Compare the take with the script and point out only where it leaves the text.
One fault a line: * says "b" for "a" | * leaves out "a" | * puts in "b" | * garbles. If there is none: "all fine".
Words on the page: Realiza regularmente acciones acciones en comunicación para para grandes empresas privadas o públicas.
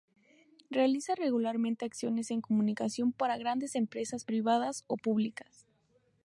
* leaves out "acciones"
* leaves out "para"